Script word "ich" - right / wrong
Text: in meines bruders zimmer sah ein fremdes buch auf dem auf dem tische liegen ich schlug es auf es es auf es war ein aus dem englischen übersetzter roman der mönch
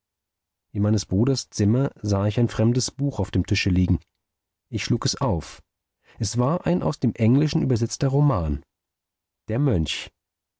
right